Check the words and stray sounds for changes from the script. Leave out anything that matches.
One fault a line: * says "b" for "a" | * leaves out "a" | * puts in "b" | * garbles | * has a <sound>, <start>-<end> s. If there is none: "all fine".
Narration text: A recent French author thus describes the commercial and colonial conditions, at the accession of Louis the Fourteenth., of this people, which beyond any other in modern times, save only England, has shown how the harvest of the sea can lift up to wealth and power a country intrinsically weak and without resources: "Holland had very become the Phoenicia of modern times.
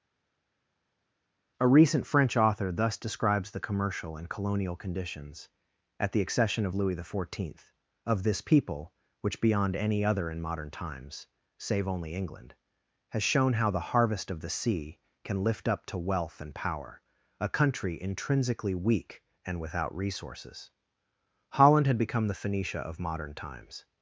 * leaves out "very"